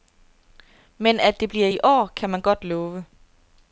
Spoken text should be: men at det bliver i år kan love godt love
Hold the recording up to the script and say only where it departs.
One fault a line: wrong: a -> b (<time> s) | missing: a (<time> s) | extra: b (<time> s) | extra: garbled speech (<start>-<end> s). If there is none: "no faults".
wrong: love -> man (2.3 s)